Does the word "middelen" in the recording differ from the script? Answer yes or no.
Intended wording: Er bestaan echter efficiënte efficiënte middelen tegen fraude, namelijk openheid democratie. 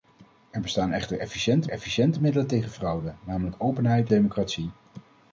no